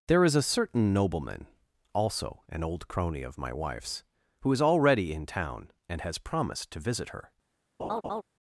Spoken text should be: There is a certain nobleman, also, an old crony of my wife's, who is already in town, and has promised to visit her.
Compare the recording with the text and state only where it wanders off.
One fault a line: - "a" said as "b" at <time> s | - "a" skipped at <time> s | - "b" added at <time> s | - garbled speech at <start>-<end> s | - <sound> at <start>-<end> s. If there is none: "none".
- laugh at 7.8-8.2 s